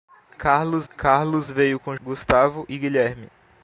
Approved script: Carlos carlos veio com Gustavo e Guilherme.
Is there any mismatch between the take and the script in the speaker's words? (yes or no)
no